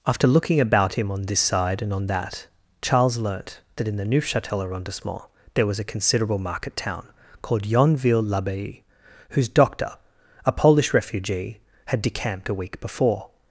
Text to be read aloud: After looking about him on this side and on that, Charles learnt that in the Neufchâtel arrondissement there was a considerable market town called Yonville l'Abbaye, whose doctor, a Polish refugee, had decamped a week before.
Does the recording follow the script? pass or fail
pass